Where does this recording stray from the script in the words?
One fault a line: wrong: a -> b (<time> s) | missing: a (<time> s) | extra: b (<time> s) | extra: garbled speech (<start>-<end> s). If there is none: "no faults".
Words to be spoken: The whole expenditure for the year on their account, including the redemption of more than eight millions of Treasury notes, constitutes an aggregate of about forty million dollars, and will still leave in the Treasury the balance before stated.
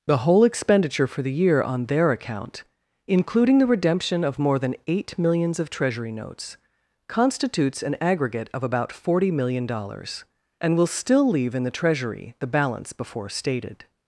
no faults